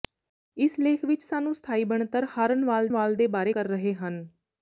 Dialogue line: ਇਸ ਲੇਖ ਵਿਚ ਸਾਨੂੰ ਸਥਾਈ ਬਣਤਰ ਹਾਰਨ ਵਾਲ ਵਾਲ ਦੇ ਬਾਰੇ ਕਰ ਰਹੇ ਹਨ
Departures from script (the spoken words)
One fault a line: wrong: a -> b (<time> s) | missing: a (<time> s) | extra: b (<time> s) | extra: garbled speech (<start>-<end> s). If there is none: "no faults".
no faults